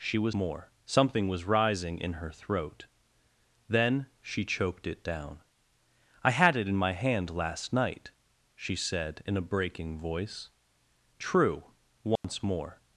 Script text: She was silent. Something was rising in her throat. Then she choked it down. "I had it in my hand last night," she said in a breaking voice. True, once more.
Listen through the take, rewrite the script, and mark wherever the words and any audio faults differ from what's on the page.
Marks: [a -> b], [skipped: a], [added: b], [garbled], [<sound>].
She was [silent. -> more] Something was rising in her throat. Then she choked it down. "I had it in my hand last night," she said in a breaking voice. True, once [dropout] more.